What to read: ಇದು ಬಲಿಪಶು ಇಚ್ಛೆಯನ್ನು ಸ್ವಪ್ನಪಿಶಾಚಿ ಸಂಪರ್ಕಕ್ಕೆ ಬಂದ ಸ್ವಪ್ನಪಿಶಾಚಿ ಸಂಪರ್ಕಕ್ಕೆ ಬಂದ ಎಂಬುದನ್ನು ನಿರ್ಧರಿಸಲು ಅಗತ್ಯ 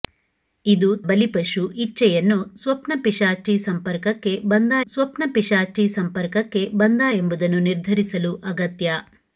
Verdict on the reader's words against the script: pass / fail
pass